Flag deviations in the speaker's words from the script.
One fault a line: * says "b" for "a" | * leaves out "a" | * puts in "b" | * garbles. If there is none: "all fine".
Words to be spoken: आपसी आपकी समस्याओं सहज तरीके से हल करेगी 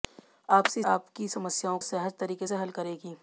all fine